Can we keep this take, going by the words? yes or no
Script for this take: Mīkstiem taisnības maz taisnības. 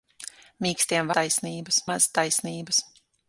yes